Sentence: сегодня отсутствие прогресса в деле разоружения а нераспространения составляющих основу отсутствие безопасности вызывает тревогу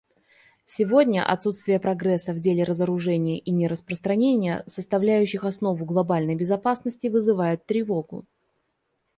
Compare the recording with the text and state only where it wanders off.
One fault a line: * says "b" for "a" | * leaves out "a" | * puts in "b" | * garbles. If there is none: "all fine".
* says "и" for "а"
* says "глобальной" for "отсутствие"